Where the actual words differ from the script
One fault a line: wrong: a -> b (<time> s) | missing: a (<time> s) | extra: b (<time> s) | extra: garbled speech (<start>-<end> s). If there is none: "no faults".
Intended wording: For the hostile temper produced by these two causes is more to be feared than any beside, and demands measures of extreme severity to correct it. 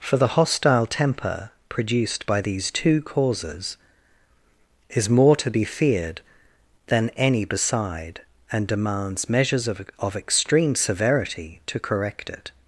extra: of (10.0 s)